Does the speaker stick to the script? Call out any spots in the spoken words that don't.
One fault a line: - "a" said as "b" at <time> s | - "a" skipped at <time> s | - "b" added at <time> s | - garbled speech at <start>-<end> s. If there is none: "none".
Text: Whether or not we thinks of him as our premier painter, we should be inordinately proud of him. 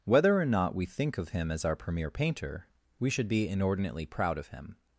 - "thinks" said as "think" at 0.8 s